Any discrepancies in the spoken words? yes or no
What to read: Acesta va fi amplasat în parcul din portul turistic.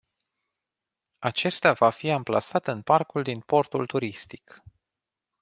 no